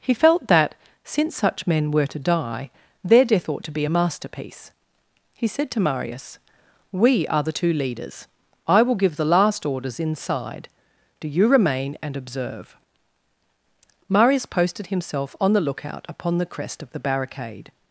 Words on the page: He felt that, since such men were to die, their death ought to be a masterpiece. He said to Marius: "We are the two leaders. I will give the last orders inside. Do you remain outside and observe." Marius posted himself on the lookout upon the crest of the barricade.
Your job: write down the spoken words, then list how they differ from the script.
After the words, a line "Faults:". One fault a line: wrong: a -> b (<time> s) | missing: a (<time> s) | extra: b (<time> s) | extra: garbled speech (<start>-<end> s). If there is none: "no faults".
He felt that, since such men were to die, their death ought to be a masterpiece. He said to Marius: "We are the two leaders. I will give the last orders inside. Do you remain and observe." Marius posted himself on the lookout upon the crest of the barricade.
Faults:
missing: outside (12.0 s)